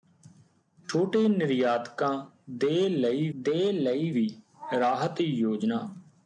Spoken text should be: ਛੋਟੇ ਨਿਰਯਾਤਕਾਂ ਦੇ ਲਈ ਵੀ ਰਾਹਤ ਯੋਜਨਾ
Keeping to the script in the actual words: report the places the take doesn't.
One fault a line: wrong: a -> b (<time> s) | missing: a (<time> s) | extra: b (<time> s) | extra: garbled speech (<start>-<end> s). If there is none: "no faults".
extra: ਦੇ ਲਈ (3.3 s)